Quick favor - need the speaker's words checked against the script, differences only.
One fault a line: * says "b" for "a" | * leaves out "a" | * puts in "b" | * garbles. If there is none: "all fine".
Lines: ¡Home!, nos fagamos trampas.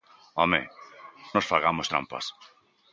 all fine